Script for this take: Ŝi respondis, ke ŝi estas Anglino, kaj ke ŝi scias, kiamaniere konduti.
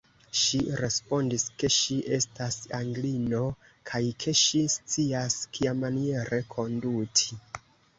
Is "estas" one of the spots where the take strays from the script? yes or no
no